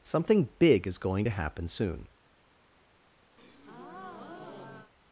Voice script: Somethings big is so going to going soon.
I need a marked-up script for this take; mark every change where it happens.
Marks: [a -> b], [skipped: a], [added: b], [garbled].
[Somethings -> Something] big is [skipped: so] going to [going -> happen] soon.